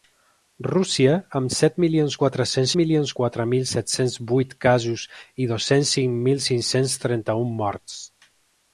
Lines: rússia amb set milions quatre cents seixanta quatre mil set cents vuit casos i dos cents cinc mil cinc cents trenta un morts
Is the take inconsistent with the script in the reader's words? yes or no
yes